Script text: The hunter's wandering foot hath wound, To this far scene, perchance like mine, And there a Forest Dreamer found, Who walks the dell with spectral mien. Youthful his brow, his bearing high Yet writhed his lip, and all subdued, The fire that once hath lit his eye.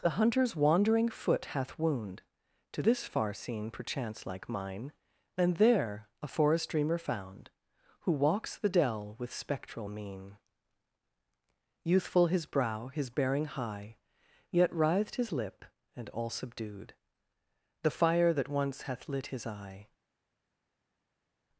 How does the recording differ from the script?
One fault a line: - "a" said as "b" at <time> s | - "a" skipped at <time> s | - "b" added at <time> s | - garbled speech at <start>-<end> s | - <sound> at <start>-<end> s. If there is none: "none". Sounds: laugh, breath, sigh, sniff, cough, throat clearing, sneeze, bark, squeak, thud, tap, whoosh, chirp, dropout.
none